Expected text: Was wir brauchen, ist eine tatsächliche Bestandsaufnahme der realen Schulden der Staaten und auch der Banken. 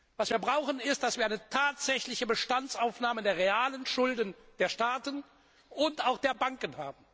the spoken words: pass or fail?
pass